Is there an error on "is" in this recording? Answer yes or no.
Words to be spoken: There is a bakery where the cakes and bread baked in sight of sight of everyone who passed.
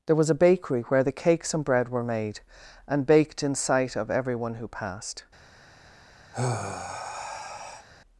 yes